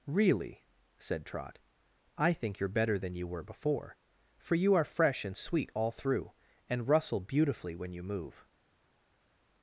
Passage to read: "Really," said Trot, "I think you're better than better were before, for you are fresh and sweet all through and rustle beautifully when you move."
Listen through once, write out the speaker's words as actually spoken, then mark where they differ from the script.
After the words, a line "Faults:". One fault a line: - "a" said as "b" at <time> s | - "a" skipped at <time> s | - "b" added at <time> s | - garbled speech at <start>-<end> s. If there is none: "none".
"Really," said Trot, "I think you're better than you were before, for you are fresh and sweet all through and rustle beautifully when you move."
Faults:
- "better" said as "you" at 3.1 s